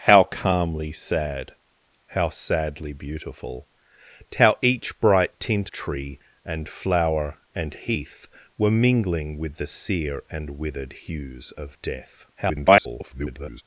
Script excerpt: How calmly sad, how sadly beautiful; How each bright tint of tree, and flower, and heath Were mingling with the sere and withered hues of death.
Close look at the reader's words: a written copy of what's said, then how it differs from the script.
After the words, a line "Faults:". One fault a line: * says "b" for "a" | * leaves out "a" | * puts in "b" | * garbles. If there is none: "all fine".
How calmly sad, how sadly beautiful; How each bright tint tree, and flower, and heath Were mingling with the sere and withered hues of death. [garbled]
Faults:
* leaves out "of"
* garbles